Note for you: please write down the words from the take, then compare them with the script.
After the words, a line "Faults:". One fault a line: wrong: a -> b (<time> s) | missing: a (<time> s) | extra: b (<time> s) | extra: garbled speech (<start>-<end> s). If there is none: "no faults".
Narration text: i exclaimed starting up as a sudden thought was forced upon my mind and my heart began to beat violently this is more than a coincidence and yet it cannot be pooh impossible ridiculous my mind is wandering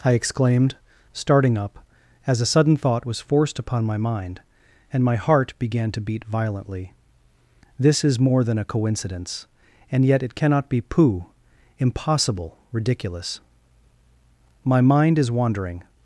i exclaimed starting up as a sudden thought was forced upon my mind and my heart began to beat violently this is more than a coincidence and yet it cannot be pooh impossible ridiculous my mind is wandering
Faults:
no faults